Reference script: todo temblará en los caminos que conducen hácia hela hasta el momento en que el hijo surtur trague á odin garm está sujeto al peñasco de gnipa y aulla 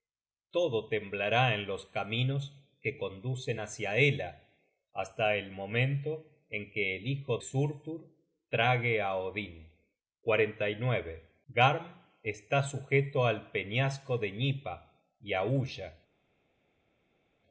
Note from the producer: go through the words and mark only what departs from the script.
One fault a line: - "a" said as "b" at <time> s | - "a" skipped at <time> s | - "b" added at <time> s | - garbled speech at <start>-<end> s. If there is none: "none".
none